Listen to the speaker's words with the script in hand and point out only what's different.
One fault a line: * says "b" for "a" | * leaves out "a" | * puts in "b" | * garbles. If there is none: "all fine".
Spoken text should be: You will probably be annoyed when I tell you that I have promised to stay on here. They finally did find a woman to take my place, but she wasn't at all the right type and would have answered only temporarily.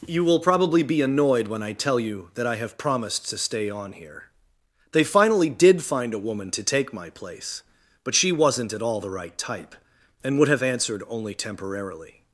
all fine